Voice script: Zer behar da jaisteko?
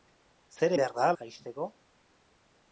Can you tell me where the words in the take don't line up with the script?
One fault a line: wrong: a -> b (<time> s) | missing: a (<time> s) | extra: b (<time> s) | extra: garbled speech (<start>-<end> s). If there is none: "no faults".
no faults